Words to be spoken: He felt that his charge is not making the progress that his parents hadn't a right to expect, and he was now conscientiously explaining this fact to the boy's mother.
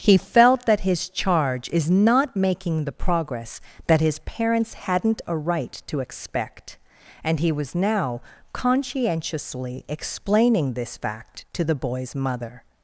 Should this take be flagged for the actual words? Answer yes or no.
no